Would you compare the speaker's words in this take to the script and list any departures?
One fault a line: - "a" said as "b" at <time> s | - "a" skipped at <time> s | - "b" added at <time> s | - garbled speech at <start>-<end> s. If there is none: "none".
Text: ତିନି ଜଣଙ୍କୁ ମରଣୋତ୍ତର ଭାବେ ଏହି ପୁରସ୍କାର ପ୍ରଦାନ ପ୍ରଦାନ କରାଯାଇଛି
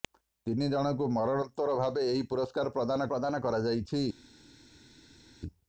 none